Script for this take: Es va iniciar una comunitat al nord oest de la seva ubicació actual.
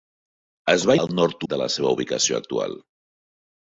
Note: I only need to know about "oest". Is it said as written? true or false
false